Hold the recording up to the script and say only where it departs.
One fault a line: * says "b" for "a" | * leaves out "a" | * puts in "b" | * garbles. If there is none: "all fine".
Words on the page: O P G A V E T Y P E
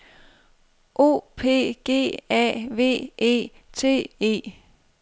* leaves out "Y P"